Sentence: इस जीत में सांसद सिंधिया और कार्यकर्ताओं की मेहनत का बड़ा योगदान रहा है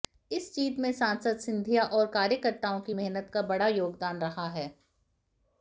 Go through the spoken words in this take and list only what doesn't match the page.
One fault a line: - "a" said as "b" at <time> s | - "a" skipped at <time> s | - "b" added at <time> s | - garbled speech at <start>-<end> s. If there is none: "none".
none